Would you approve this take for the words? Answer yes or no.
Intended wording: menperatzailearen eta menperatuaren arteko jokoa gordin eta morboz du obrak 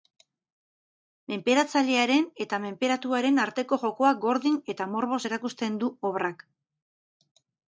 no